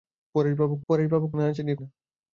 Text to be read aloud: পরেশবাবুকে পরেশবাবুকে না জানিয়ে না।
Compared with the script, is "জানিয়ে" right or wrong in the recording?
right